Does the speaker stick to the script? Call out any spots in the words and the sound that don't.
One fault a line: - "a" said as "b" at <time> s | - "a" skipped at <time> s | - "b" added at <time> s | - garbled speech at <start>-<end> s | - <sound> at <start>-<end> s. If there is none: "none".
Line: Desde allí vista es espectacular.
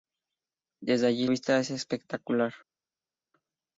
none